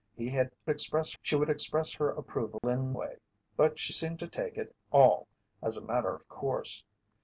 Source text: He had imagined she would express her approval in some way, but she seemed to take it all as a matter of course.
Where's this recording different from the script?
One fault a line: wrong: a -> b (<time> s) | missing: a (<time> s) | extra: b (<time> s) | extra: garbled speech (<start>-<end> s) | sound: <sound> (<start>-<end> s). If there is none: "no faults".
wrong: imagined -> express (0.7 s)
sound: dropout (2.6-2.6 s)
missing: some (2.9 s)